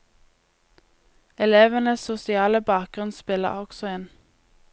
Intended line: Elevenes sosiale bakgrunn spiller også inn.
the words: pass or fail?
pass